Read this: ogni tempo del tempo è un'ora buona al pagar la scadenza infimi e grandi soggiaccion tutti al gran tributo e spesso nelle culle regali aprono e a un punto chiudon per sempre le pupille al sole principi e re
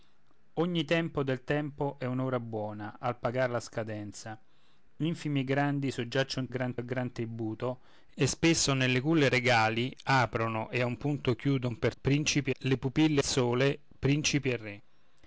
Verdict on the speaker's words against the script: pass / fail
fail